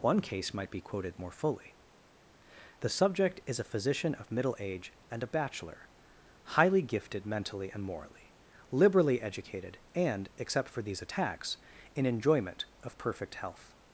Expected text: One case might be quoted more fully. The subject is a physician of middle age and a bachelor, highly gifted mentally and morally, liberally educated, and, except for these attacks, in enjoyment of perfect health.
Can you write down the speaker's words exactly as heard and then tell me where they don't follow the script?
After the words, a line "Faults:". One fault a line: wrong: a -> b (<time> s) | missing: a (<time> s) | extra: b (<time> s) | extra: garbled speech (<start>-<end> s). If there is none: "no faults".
One case might be quoted more fully. The subject is a physician of middle age and a bachelor, highly gifted mentally and morally, liberally educated, and, except for these attacks, in enjoyment of perfect health.
Faults:
no faults